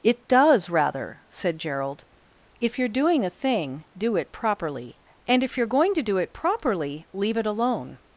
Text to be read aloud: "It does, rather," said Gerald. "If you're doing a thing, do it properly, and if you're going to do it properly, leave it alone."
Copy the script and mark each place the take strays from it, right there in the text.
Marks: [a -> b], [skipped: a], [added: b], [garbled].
"It does, rather," said Gerald. "If you're doing a thing, do it properly, and if you're going to do it properly, leave it alone."